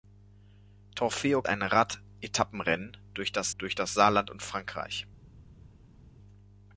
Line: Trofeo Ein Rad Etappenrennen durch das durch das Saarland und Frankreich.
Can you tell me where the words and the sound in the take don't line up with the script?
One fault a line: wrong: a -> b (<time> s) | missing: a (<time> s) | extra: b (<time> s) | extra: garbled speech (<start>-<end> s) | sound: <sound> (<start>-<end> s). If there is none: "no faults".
no faults